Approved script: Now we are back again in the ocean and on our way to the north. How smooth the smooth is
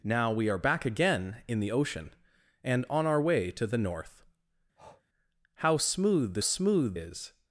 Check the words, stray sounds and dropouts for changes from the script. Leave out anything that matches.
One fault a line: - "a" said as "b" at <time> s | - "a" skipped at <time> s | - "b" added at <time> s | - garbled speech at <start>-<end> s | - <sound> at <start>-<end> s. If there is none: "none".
- breath at 4.8-5.0 s